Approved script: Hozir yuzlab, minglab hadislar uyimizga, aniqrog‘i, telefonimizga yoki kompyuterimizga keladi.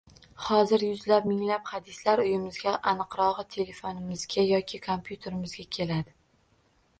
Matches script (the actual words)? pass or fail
pass